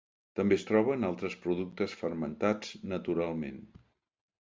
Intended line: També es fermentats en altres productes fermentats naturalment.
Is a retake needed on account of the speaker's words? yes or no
yes